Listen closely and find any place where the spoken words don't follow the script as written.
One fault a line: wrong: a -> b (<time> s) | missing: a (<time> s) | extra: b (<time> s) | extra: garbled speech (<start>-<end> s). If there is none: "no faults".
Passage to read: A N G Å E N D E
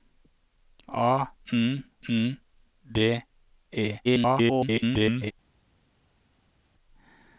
missing: G Å E (1.8 s)
extra: garbled speech (4.0-5.3 s)